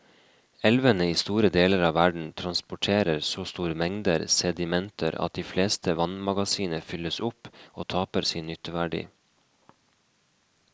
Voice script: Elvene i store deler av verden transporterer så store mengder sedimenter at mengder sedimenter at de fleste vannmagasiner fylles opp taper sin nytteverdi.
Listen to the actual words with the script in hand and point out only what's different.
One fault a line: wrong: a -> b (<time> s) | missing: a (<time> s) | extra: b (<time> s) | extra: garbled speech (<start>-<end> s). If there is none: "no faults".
missing: mengder sedimenter at (5.4 s)
extra: og (7.7 s)